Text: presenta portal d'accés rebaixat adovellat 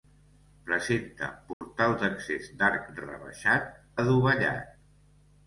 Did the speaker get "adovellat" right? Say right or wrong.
right